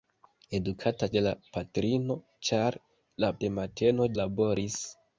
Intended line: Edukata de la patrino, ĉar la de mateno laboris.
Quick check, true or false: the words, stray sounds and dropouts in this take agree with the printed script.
true